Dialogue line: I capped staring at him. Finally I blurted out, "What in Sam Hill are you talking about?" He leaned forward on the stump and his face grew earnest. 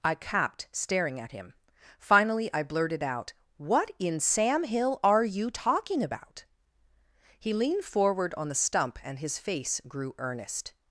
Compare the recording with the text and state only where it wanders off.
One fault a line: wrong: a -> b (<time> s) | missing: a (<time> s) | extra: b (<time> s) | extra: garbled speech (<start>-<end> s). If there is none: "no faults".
no faults